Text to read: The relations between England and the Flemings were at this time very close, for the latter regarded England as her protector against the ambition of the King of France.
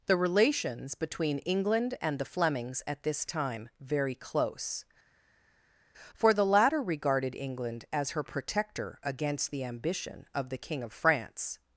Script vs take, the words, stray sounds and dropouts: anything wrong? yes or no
yes